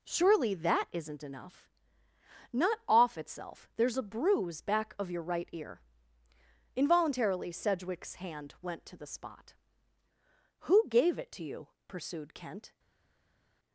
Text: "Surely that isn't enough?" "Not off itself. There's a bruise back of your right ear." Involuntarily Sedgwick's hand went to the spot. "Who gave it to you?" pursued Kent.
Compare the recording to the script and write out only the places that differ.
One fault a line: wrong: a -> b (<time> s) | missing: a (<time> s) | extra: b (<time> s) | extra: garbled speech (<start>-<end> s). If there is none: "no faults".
no faults